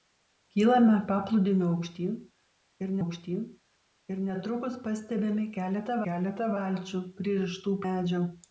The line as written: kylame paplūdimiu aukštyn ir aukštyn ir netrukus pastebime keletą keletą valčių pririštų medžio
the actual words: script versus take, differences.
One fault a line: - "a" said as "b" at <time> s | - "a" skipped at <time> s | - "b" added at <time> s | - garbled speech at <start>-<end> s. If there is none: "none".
none